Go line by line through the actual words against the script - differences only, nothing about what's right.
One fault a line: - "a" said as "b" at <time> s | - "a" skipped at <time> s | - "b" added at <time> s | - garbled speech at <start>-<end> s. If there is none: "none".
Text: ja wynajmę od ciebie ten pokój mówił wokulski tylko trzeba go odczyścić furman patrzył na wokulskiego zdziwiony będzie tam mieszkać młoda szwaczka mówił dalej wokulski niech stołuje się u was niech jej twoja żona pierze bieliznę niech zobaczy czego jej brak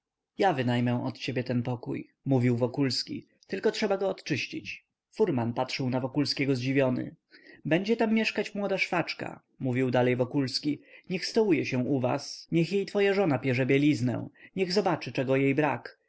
none